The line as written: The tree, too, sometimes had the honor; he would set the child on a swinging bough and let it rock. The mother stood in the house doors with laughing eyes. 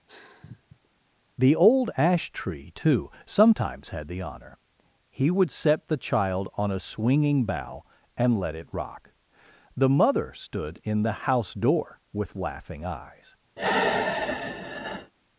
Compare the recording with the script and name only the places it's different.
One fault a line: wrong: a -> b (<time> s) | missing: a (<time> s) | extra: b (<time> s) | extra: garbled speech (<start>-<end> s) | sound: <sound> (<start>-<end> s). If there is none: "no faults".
sound: sigh (0.1-0.9 s)
extra: old ash (1.5 s)
wrong: doors -> door (11.5 s)
sound: sigh (13.6-15.1 s)